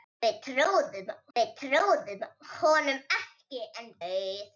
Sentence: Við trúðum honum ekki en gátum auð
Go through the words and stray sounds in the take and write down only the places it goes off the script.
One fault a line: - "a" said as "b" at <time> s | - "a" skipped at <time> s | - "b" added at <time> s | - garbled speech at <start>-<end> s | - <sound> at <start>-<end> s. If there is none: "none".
- "við trúðum" added at 1.4 s
- "gátum" skipped at 3.9 s